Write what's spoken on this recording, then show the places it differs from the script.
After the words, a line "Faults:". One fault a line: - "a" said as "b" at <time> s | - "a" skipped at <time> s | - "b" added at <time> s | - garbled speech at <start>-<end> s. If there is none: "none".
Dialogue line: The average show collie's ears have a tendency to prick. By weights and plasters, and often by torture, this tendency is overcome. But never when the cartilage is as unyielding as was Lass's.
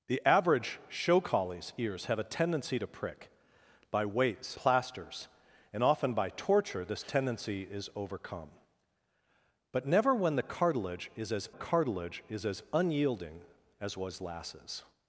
The average show collie's ears have a tendency to prick. By weights plasters, and often by torture, this tendency is overcome. But never when the cartilage is as cartilage is as unyielding as was Lass's.
Faults:
- "and" skipped at 4.6 s
- "cartilage is as" added at 11.5 s